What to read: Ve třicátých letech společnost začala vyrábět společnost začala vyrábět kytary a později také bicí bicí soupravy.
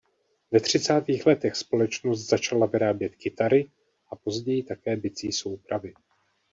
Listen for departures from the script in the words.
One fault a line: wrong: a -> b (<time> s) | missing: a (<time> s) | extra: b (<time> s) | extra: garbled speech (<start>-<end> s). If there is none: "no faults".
missing: společnost začala vyrábět (3.1 s)
missing: bicí (5.3 s)